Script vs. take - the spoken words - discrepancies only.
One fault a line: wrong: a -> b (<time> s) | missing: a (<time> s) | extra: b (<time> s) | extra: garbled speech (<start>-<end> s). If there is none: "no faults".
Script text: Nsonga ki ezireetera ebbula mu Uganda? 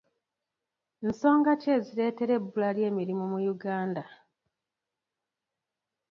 extra: ly'emirimu (2.8 s)